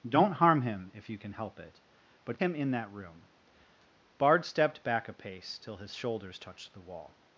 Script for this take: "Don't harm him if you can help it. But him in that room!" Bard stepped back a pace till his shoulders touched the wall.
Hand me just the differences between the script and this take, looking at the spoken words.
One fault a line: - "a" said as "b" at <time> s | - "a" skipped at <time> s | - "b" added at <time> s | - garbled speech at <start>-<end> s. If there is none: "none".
none